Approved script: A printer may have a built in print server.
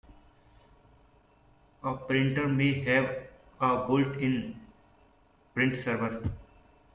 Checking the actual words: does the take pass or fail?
pass